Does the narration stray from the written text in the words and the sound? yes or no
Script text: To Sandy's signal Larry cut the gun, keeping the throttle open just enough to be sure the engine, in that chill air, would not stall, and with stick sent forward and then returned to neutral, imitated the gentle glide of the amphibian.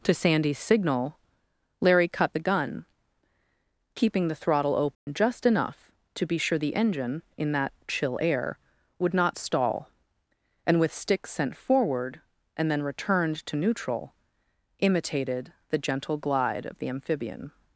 yes